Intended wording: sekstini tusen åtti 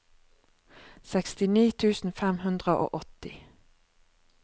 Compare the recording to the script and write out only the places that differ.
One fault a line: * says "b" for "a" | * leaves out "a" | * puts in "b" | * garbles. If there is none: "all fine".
* puts in "fem hundre og"